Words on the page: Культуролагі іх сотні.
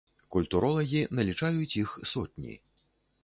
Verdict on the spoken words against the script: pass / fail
fail